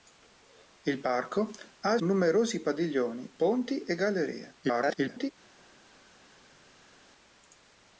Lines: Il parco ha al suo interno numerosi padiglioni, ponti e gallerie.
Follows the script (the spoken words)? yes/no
no